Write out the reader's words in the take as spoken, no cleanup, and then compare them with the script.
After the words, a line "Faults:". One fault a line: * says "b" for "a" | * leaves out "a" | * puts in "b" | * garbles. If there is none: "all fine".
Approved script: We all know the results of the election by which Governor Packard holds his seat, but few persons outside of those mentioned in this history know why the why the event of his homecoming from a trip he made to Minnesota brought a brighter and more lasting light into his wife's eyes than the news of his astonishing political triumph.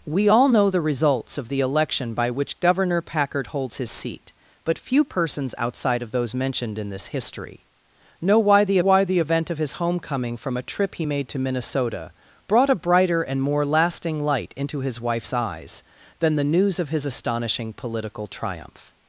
We all know the results of the election by which Governor Packard holds his seat, but few persons outside of those mentioned in this history know why the why the event of his homecoming from a trip he made to Minnesota brought a brighter and more lasting light into his wife's eyes than the news of his astonishing political triumph.
Faults:
all fine